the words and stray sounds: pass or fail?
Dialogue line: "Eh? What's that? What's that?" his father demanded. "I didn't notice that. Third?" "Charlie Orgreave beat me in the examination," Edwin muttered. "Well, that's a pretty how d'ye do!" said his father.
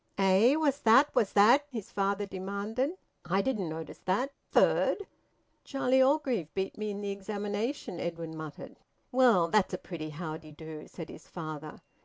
pass